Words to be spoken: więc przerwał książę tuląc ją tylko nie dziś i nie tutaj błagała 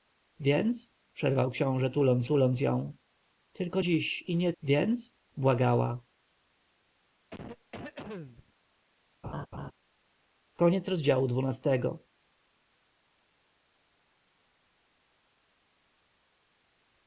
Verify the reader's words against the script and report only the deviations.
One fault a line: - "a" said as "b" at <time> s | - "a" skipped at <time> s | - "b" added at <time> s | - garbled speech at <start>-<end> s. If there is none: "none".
- "tuląc" added at 2.2 s
- "nie" skipped at 3.8 s
- "tutaj" said as "więc" at 4.6 s